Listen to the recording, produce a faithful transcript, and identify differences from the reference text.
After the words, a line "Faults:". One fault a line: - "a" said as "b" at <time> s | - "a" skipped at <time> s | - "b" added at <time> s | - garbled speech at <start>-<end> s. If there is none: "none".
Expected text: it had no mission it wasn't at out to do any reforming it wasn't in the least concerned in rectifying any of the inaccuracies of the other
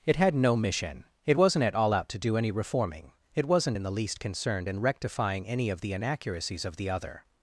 it had no mission it wasn't at all out to do any reforming it wasn't in the least concerned in rectifying any of the inaccuracies of the other
Faults:
- "all" added at 1.7 s